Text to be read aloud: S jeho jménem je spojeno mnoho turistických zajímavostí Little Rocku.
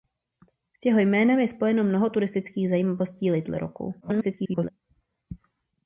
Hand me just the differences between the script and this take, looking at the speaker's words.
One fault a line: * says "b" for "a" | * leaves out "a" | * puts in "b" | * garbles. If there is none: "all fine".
* garbles